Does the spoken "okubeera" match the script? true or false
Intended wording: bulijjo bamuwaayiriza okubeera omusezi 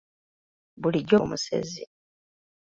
false